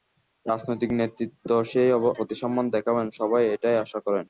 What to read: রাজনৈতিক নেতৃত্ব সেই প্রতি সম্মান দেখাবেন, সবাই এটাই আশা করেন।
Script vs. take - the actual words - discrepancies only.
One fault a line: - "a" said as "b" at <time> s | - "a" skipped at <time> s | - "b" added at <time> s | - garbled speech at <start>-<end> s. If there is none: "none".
none